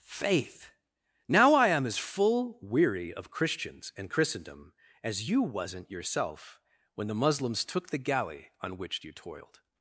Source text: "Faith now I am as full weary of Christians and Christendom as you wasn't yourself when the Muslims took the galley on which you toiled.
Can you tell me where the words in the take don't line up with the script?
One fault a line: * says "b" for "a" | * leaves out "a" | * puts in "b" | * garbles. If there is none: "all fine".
all fine